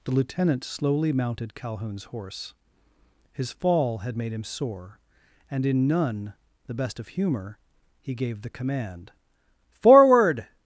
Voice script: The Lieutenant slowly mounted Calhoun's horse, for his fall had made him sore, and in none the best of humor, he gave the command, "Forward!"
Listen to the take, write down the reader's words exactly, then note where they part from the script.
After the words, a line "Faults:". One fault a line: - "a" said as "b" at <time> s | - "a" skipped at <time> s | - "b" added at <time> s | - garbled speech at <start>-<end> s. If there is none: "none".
The Lieutenant slowly mounted Calhoun's horse, his fall had made him sore, and in none the best of humor, he gave the command, "Forward!"
Faults:
- "for" skipped at 2.5 s